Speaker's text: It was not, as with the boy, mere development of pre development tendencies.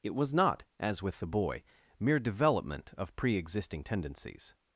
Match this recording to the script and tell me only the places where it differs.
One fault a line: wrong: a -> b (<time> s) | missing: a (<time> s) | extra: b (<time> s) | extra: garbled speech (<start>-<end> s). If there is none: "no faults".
wrong: development -> existing (3.4 s)